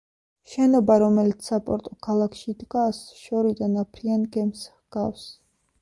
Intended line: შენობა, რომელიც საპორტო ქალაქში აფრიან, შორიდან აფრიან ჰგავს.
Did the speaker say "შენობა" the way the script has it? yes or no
yes